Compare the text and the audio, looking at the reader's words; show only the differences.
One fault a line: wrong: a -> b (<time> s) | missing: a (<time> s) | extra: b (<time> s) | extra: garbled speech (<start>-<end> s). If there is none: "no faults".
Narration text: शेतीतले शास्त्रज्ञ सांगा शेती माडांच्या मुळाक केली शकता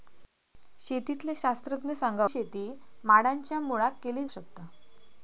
no faults